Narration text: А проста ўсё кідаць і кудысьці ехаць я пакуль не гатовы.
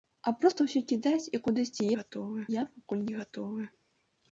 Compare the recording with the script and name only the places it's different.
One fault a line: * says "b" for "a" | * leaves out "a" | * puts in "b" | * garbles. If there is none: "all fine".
* says "гатовы" for "ехаць"